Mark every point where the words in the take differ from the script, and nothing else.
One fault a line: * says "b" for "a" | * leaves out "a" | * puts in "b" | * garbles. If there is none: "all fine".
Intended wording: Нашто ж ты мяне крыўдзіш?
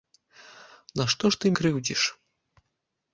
* leaves out "мяне"